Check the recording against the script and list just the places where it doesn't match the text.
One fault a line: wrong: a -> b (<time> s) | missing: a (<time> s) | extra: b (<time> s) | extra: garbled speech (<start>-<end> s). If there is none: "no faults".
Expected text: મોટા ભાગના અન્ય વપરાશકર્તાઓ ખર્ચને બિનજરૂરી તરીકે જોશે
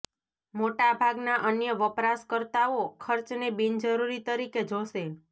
no faults